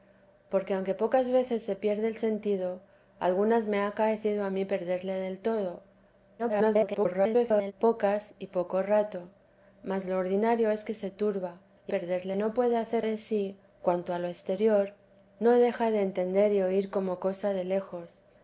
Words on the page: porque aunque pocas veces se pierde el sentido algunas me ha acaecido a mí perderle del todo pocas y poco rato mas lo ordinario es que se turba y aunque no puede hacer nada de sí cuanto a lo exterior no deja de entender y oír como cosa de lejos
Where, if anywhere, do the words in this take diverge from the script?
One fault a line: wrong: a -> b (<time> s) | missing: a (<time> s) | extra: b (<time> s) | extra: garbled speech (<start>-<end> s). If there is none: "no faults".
extra: garbled speech (6.4-7.7 s)
wrong: aunque -> perderle (11.9 s)
missing: nada (13.0 s)